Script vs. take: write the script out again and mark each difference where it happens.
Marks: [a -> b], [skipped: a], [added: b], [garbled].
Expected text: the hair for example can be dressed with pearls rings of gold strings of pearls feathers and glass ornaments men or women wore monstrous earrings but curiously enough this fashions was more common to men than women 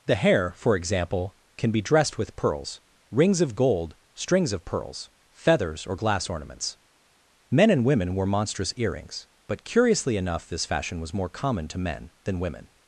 the hair for example can be dressed with pearls rings of gold strings of pearls feathers [and -> or] glass ornaments men [or -> and] women wore monstrous earrings but curiously enough this [fashions -> fashion] was more common to men than women